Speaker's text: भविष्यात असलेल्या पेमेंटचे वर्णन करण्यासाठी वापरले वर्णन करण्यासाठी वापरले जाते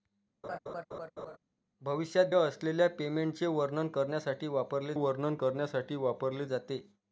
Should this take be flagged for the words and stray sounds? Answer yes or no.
yes